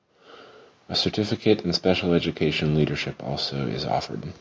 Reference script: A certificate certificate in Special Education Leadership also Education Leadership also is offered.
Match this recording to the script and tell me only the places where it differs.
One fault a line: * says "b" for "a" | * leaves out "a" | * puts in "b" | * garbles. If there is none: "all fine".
* leaves out "certificate"
* leaves out "Education Leadership also"